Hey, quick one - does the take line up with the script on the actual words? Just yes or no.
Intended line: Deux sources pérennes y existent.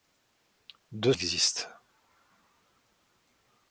no